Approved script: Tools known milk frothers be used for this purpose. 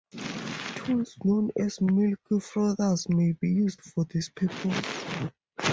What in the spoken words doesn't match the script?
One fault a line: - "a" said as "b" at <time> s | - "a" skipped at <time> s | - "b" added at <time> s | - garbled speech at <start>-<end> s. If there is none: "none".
- "as" added at 1.6 s
- "may" added at 3.1 s